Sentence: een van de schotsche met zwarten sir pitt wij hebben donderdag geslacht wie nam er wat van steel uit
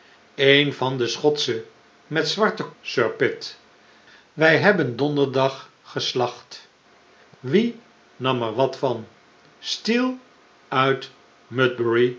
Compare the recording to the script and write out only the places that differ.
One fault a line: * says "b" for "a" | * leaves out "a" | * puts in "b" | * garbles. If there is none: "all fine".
all fine